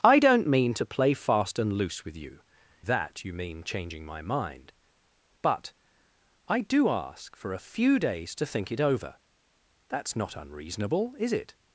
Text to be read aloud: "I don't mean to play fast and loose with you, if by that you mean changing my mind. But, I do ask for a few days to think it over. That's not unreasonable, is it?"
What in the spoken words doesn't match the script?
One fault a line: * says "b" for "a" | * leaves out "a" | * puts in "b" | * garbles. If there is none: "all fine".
* leaves out "if by"